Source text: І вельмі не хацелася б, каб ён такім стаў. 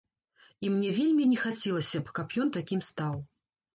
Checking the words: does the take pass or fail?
fail